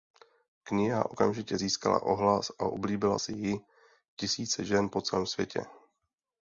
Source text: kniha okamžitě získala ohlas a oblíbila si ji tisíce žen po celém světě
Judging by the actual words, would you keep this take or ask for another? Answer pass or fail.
pass